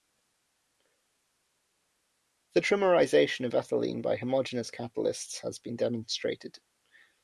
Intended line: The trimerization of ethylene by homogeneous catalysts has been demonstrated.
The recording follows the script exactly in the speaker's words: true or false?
true